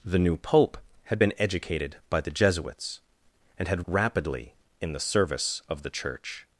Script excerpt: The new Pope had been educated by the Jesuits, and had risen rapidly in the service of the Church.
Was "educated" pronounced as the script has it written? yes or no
yes